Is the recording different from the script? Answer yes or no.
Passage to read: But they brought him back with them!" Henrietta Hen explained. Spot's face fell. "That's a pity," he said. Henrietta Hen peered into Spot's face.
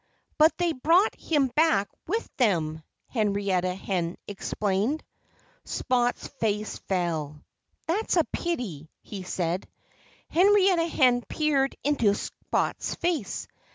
no